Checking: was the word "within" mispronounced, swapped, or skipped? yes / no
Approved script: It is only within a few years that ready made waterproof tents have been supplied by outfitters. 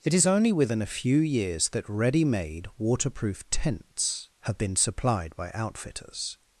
no